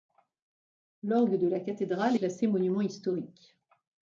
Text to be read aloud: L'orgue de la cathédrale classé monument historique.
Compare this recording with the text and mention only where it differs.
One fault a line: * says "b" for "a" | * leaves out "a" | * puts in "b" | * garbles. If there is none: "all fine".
all fine